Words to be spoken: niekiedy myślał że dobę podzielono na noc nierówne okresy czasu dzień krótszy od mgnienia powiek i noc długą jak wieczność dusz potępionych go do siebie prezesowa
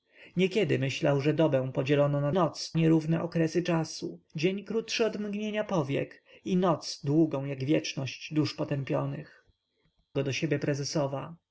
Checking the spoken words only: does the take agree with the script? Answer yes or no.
yes